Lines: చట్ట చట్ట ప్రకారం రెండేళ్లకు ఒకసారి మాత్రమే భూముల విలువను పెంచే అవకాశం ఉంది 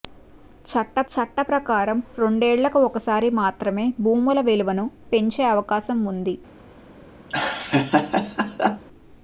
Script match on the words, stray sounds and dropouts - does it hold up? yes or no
no